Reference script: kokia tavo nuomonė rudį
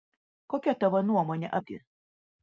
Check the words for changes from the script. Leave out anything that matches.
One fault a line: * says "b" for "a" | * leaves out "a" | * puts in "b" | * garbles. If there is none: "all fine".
all fine